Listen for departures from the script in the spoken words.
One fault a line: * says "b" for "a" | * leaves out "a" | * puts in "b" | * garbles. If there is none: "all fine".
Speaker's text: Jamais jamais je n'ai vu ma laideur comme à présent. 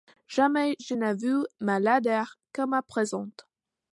* leaves out "jamais"